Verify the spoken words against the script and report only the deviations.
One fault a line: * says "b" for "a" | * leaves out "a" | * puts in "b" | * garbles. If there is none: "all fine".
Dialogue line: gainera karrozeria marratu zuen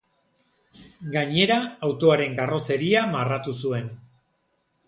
* puts in "autoaren"